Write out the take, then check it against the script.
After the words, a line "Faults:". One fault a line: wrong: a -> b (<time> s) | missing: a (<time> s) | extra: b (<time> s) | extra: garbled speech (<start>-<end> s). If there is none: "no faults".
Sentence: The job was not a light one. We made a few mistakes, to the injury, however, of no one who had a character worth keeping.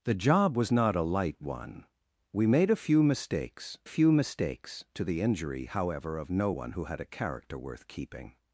The job was not a light one. We made a few mistakes few mistakes, to the injury, however, of no one who had a character worth keeping.
Faults:
extra: few mistakes (3.8 s)